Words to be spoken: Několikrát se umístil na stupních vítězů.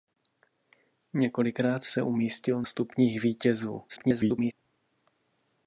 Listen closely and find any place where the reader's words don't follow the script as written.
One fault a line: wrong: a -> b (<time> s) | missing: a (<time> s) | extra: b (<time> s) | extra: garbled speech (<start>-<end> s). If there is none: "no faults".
missing: na (2.6 s)
extra: garbled speech (3.9-4.5 s)